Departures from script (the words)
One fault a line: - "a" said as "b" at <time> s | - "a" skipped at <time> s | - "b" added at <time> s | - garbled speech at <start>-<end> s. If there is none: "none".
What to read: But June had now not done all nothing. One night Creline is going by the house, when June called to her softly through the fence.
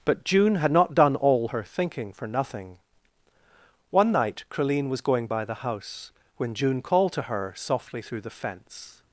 - "now" skipped at 0.7 s
- "her thinking for" added at 1.5 s
- "is" said as "was" at 4.9 s